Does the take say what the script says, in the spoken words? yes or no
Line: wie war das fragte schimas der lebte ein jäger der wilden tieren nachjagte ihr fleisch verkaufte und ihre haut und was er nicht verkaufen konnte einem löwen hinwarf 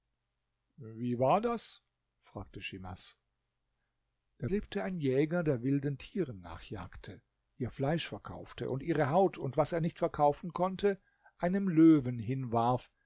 yes